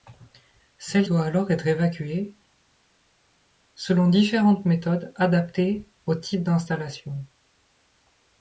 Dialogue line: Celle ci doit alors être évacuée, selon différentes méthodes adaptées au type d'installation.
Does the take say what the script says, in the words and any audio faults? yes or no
no